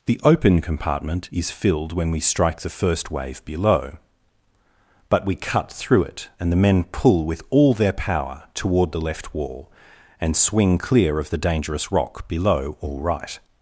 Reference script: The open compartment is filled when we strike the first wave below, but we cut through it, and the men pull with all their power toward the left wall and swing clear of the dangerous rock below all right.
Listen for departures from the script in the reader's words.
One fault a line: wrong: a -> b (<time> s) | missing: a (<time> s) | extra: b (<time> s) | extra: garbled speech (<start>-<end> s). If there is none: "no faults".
no faults